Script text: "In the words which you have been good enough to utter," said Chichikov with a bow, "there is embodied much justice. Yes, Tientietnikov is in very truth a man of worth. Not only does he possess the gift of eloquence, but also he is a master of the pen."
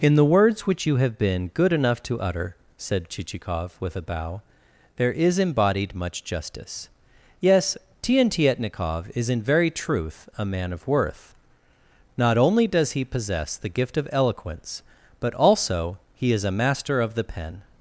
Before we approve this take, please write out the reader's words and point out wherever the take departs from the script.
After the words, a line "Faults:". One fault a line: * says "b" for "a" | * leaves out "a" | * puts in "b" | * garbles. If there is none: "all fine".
"In the words which you have been good enough to utter," said Chichikov with a bow, "there is embodied much justice. Yes, Tientietnikov is in very truth a man of worth. Not only does he possess the gift of eloquence, but also he is a master of the pen."
Faults:
all fine